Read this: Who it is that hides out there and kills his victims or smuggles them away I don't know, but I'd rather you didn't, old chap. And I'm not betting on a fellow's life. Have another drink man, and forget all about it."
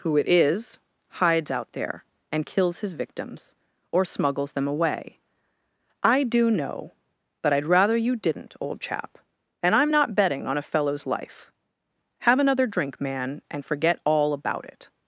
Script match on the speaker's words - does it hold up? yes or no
no